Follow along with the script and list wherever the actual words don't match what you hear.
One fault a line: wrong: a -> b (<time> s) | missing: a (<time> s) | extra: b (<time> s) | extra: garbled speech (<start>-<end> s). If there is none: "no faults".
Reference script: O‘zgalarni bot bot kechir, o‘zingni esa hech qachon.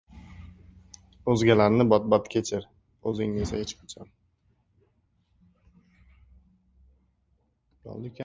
no faults